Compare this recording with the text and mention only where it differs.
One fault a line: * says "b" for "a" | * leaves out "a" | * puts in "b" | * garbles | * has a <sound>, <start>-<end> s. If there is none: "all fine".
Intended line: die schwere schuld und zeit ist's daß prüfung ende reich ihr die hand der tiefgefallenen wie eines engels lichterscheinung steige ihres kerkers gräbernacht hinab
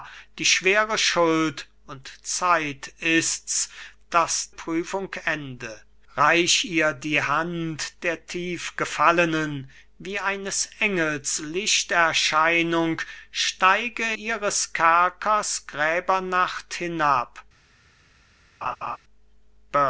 * has a laugh, 18.6-19.0 s